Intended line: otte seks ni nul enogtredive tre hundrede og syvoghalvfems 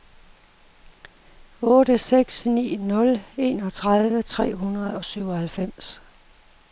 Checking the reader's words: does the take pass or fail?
pass